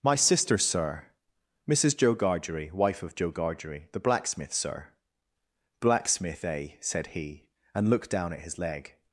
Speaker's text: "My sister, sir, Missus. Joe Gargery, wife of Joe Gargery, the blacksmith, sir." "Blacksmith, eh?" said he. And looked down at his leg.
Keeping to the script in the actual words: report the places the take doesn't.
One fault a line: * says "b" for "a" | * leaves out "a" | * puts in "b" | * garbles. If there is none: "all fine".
all fine